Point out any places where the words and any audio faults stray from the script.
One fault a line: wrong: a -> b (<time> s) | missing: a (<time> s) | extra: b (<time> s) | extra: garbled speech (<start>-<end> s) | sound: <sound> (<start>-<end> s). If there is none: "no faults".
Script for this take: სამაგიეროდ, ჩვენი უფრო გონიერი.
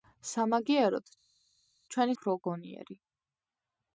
no faults